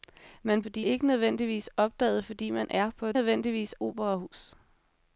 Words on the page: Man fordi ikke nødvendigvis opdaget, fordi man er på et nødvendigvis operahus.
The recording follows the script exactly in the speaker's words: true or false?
true